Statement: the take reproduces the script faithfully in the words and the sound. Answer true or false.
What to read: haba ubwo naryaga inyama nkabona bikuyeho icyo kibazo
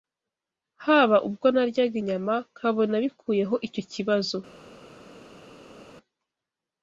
true